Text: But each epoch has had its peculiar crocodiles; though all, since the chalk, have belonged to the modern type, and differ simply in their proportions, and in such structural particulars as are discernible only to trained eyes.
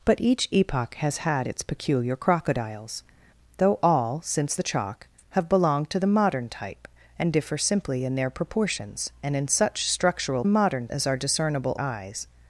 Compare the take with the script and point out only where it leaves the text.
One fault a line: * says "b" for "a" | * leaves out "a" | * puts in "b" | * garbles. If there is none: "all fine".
* says "modern" for "particulars"
* leaves out "only to trained"